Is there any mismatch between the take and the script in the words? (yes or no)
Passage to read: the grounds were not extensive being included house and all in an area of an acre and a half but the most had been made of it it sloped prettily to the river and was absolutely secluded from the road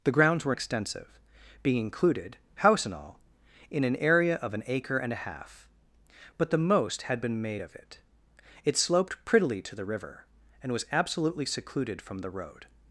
yes